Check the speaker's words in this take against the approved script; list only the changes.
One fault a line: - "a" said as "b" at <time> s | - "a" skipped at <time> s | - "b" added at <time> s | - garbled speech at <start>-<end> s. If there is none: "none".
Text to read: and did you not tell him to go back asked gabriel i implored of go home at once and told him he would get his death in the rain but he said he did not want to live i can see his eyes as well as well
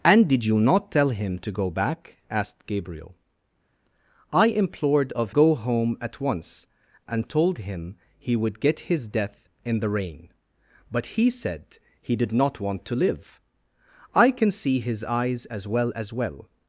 none